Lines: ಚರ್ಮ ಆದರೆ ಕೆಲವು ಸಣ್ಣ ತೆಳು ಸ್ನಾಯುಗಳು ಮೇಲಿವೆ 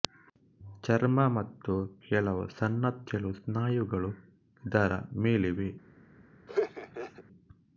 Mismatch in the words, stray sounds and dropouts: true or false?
true